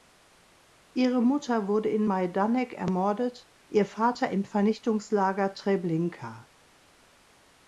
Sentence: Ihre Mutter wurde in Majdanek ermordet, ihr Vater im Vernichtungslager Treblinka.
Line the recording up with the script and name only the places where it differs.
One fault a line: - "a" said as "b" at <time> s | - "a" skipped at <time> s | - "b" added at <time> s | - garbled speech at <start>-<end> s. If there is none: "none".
none